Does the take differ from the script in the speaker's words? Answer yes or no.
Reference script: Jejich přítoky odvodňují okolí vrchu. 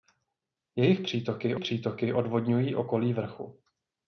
yes